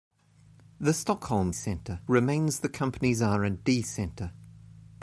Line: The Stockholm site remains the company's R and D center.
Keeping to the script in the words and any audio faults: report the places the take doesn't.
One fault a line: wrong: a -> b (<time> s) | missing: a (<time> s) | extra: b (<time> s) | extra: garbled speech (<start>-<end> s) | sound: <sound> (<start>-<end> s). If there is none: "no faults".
wrong: site -> center (1.5 s)